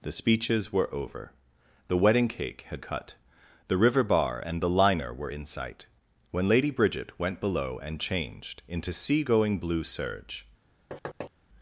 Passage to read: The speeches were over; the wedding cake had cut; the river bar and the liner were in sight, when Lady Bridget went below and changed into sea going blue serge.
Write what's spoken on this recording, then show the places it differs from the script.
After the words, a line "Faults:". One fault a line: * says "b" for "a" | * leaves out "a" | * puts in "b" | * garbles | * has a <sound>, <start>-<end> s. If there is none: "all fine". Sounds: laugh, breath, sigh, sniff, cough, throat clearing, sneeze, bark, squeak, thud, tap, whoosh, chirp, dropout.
The speeches were over; the wedding cake had cut; the river bar and the liner were in sight, when Lady Bridget went below and changed into sea going blue serge.
Faults:
* has a thud, 10.9-11.3 s